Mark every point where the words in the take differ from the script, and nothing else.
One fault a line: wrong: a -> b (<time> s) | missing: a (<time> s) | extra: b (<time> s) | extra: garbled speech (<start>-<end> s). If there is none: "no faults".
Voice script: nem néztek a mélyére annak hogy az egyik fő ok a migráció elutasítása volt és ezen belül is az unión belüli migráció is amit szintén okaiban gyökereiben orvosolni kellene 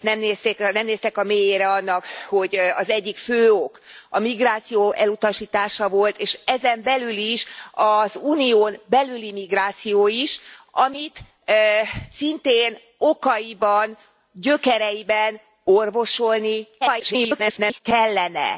extra: garbled speech (16.8-17.8 s)